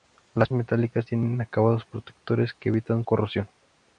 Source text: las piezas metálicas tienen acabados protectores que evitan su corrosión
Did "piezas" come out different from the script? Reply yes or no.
yes